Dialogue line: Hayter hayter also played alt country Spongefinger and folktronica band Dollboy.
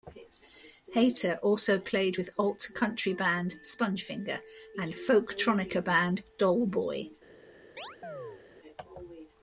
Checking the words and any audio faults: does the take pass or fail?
fail